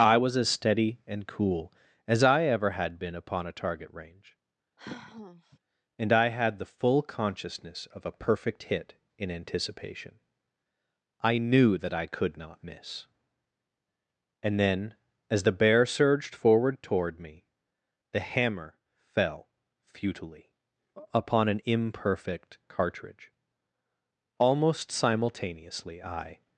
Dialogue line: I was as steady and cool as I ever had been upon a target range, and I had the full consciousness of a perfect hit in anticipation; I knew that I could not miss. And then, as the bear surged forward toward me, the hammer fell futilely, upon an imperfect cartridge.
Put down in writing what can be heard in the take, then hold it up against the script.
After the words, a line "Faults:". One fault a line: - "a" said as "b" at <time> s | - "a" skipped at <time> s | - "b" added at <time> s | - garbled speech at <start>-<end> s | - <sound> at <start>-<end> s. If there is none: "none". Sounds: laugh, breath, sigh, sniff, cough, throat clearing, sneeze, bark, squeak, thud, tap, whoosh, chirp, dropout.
I was as steady and cool as I ever had been upon a target range, and I had the full consciousness of a perfect hit in anticipation; I knew that I could not miss. And then, as the bear surged forward toward me, the hammer fell futilely, upon an imperfect cartridge. Almost simultaneously I
Faults:
- sigh at 4.8-5.6 s
- "Almost simultaneously I" added at 24.4 s